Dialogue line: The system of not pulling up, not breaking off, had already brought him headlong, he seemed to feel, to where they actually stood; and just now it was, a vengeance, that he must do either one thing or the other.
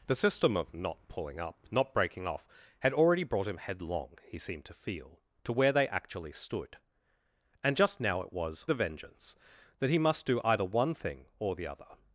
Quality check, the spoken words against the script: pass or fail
pass